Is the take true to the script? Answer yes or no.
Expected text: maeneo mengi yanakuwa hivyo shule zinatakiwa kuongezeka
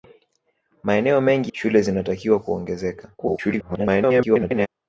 no